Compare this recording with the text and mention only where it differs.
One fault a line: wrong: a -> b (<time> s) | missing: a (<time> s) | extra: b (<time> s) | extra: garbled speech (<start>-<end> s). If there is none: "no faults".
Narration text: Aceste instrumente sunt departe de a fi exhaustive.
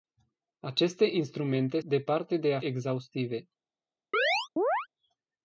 missing: sunt (1.8 s)
missing: fi (2.6 s)